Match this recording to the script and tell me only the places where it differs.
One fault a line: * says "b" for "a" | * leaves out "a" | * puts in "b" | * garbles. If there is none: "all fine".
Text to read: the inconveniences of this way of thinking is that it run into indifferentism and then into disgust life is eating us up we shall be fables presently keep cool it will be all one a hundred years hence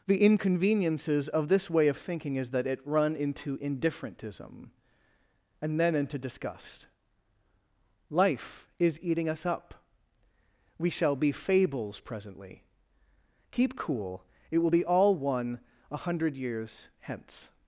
all fine